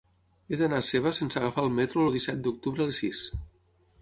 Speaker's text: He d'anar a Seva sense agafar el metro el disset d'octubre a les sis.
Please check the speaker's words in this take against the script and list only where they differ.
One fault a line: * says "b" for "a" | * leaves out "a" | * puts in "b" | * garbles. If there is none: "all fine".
all fine